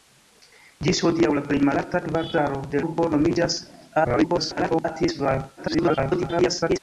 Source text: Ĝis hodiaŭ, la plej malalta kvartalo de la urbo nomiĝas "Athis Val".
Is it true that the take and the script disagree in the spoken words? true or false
true